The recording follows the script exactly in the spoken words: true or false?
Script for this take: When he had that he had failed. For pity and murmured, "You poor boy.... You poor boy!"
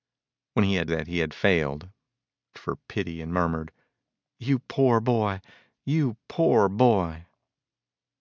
true